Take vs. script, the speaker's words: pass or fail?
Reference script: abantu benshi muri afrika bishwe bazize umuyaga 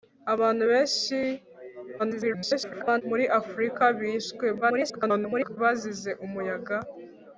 fail